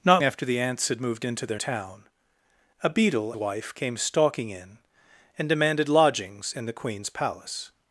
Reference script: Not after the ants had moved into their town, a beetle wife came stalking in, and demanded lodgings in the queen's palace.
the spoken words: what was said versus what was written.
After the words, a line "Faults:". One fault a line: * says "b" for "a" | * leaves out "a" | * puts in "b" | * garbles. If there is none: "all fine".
Not after the ants had moved into their town, a beetle wife came stalking in, and demanded lodgings in the queen's palace.
Faults:
all fine